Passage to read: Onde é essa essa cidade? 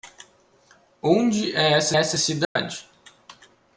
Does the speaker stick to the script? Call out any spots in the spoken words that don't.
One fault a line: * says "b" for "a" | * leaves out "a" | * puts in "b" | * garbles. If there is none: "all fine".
all fine